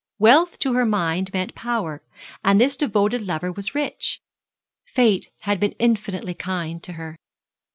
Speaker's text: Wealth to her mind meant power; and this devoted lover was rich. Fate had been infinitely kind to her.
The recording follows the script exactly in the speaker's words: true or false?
true